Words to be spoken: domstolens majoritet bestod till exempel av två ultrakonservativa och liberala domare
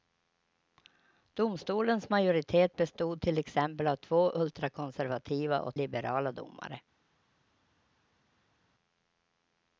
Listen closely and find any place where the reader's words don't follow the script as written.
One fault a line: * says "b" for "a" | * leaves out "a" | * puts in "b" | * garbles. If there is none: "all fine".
all fine